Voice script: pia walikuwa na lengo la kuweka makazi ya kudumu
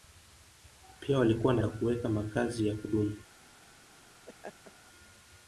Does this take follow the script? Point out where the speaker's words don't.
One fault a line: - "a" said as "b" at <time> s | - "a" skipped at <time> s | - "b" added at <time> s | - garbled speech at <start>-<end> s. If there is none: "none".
- "lengo" skipped at 1.6 s